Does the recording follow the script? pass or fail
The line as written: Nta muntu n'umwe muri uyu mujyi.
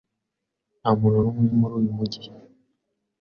pass